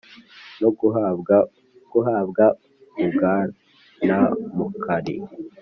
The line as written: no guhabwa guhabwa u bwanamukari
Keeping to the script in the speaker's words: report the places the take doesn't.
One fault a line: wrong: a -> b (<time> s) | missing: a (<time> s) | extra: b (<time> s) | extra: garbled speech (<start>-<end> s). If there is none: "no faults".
no faults